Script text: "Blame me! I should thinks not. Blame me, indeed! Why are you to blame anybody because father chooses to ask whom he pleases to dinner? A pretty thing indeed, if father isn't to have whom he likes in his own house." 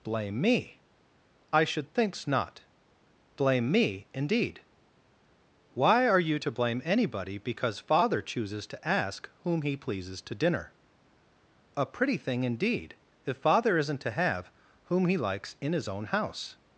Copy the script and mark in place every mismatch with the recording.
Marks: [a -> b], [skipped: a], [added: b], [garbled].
"Blame me! I should thinks not. Blame me, indeed! Why are you to blame anybody because father chooses to ask whom he pleases to dinner? A pretty thing indeed, if father isn't to have whom he likes in his own house."